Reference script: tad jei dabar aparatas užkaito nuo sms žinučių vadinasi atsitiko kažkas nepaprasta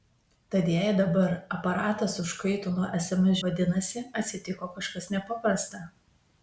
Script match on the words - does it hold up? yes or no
no